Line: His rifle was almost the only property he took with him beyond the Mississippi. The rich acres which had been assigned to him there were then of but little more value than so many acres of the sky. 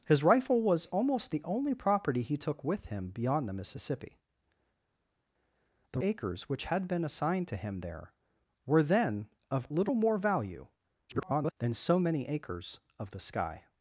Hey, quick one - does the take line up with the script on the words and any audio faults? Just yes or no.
no